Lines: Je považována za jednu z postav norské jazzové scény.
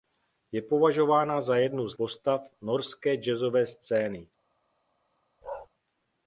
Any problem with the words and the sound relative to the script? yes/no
yes